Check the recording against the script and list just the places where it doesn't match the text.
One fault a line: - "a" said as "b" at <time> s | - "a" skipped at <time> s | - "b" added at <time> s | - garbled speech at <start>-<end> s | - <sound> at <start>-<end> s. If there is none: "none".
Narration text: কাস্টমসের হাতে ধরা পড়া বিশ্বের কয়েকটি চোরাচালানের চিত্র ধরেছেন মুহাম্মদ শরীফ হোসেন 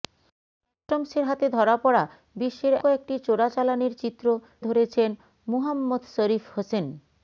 none